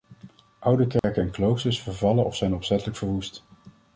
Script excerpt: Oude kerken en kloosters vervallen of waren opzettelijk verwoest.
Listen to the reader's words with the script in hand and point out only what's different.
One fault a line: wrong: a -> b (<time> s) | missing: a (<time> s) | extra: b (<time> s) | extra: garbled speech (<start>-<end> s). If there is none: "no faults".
wrong: waren -> zijn (2.3 s)